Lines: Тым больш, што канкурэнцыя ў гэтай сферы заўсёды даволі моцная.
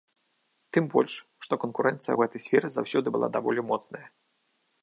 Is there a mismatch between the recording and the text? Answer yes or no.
yes